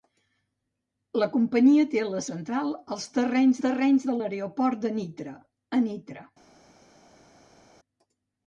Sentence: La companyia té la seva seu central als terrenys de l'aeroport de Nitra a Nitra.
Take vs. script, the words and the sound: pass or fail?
fail